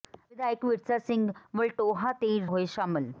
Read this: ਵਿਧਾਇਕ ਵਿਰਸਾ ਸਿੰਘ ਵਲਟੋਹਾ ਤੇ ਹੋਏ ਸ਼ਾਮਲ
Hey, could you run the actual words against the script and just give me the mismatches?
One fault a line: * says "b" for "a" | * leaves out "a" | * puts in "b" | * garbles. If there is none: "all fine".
all fine